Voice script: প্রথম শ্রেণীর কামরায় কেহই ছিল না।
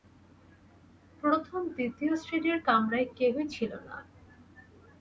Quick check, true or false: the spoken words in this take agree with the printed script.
false